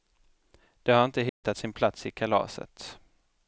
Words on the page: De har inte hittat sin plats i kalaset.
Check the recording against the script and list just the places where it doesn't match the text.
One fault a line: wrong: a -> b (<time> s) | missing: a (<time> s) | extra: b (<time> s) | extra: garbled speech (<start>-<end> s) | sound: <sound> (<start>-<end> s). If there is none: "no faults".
sound: dropout (1.3-1.4 s)